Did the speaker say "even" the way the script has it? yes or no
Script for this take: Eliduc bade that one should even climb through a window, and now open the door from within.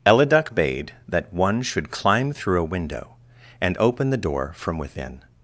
no